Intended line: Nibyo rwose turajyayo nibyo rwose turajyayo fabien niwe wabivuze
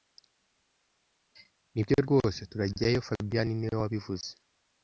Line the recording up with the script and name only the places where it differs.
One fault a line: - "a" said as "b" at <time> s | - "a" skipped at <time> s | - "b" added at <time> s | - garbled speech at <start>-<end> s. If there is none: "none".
- "nibyo rwose turajyayo" skipped at 3.0 s